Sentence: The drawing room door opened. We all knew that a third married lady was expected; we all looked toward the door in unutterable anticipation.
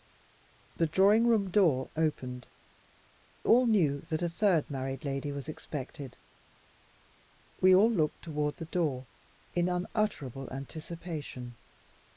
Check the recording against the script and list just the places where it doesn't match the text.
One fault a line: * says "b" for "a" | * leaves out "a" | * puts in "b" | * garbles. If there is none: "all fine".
* leaves out "We"